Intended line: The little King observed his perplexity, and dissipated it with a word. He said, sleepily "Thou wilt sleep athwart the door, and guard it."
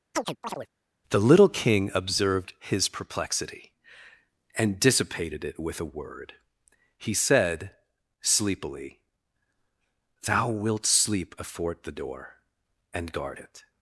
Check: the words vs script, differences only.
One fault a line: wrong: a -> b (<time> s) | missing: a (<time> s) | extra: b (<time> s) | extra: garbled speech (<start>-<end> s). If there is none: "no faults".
no faults